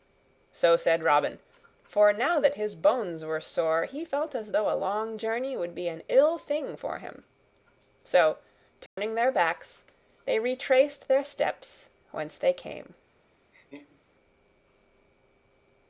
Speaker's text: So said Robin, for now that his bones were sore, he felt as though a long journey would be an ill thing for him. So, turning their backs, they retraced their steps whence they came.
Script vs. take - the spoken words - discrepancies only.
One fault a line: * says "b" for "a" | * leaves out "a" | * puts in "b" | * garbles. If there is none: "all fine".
all fine